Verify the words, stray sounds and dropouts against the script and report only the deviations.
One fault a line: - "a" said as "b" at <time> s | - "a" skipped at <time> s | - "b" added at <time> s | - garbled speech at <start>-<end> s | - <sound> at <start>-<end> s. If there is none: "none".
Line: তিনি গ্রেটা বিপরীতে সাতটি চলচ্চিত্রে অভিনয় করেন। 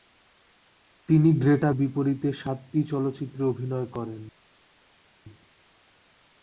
none